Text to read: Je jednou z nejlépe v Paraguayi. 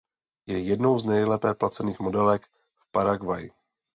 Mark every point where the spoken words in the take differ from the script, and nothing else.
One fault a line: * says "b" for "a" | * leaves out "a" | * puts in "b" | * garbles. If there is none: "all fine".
* puts in "placených modelek"